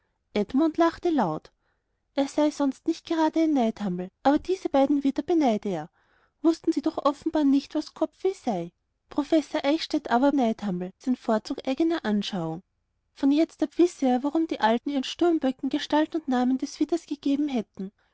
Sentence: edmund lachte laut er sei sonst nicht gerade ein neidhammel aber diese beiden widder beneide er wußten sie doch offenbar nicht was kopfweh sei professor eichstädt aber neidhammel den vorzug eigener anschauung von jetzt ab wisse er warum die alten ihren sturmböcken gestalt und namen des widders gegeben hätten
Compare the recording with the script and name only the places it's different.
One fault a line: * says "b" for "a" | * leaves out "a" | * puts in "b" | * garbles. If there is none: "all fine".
all fine